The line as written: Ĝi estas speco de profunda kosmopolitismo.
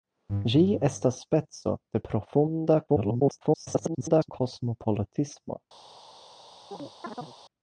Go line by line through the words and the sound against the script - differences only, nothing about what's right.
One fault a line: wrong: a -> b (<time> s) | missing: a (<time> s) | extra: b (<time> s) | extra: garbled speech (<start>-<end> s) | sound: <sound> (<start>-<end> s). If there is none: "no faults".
extra: garbled speech (2.9-4.3 s)
sound: chirp (6.7-7.4 s)